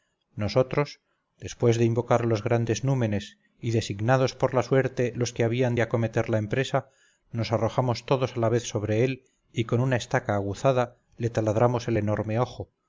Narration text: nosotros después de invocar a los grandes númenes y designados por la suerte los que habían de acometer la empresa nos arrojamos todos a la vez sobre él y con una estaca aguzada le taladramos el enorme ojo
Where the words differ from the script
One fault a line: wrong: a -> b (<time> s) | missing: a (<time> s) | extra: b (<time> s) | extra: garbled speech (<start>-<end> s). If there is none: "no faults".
no faults